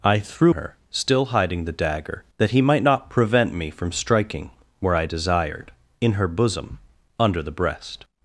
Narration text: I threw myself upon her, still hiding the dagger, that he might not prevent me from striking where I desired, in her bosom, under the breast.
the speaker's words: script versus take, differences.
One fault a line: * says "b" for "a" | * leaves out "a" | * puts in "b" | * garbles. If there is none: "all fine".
* leaves out "myself upon"